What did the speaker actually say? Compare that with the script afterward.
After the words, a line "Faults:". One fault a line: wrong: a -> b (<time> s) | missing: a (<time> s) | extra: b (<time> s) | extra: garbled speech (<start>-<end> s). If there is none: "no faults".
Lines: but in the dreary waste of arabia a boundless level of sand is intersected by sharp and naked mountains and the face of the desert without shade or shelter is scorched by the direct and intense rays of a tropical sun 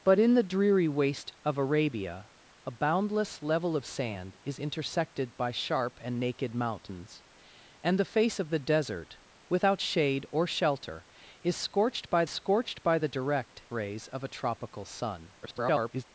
but in the dreary waste of arabia a boundless level of sand is intersected by sharp and naked mountains and the face of the desert without shade or shelter is scorched by scorched by the direct rays of a tropical sun [garbled]
Faults:
extra: scorched by (12.3 s)
missing: and intense (13.6 s)
extra: garbled speech (15.4-16.0 s)